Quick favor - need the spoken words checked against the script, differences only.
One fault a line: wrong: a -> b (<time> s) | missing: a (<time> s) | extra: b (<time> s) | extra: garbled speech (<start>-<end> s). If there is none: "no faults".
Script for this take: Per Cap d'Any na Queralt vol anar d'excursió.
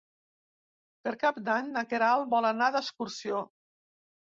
no faults